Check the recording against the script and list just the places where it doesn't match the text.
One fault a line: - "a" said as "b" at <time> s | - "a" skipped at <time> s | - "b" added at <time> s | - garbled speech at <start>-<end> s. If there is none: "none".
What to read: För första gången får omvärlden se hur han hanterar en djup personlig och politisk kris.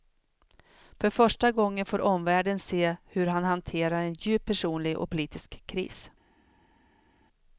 none